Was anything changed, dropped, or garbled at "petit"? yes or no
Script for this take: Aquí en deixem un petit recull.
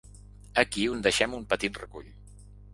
no